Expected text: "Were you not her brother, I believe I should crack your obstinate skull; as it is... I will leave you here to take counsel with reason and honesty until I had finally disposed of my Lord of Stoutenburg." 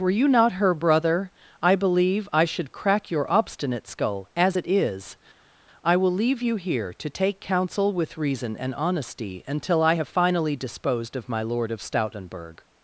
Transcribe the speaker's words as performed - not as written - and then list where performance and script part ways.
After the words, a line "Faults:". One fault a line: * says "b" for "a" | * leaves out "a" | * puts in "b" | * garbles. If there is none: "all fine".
"Were you not her brother, I believe I should crack your obstinate skull; as it is... I will leave you here to take counsel with reason and honesty until I have finally disposed of my Lord of Stoutenburg."
Faults:
* says "have" for "had"